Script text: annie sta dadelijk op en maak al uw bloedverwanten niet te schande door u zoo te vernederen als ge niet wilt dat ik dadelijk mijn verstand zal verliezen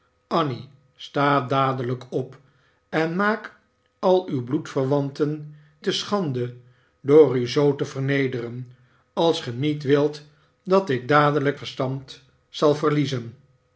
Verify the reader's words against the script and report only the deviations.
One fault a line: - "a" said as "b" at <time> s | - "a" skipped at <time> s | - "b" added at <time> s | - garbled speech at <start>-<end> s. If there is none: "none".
- "niet" skipped at 5.5 s
- "mijn" skipped at 11.6 s